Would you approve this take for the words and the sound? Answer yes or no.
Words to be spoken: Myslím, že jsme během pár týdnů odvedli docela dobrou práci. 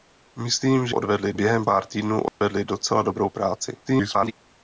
no